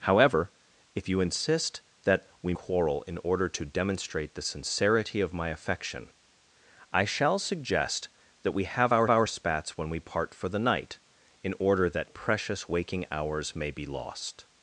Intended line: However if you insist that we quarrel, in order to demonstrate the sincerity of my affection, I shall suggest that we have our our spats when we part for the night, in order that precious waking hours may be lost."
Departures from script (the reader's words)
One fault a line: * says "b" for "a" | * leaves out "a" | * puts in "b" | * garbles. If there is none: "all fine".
all fine